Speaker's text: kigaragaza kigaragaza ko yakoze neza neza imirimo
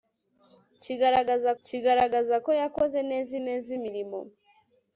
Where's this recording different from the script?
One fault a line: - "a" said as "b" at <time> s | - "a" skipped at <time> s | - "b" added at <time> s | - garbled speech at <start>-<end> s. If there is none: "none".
none